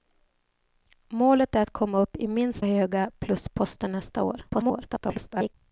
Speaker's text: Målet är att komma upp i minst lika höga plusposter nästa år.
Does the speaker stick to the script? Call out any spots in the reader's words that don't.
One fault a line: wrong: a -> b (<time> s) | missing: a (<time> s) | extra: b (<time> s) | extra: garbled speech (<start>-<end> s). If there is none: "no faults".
missing: lika (2.7 s)
extra: garbled speech (4.5-5.5 s)